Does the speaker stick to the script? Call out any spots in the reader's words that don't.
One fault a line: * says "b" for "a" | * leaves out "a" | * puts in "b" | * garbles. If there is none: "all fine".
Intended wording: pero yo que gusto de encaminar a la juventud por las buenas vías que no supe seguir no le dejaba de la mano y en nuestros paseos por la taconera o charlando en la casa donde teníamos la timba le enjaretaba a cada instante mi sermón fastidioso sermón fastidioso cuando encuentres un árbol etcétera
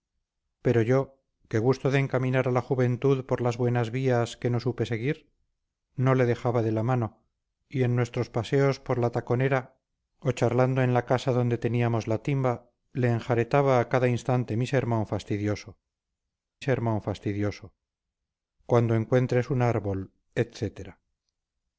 all fine